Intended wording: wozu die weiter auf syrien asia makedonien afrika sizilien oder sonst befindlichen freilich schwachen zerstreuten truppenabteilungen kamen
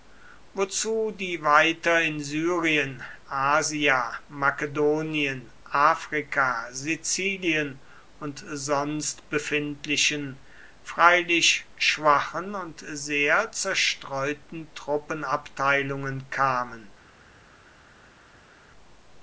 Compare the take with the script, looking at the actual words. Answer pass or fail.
fail